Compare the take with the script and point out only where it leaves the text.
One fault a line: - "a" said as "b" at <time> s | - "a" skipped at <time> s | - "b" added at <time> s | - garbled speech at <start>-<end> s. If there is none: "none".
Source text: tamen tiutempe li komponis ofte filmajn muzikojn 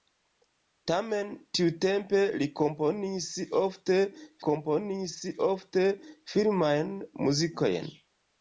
- "komponis ofte" added at 4.5 s